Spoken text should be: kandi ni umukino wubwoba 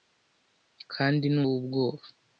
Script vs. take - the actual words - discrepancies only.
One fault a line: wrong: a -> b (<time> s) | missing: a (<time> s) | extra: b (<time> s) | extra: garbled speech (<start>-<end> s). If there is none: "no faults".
missing: umukino (1.4 s)